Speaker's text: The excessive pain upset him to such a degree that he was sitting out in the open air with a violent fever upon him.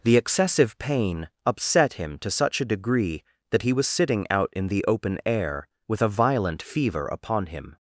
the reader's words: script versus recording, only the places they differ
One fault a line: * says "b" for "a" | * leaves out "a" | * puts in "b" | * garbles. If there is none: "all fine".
all fine